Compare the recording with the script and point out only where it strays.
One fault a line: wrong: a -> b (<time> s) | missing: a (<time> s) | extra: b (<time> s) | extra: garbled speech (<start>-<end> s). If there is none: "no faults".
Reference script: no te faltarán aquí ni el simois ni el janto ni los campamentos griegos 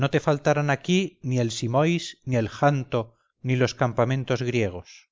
no faults